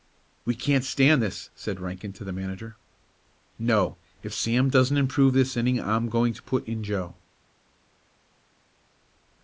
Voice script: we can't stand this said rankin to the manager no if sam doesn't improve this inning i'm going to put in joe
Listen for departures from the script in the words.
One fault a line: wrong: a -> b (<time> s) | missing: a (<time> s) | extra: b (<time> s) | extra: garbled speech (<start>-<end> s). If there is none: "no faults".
no faults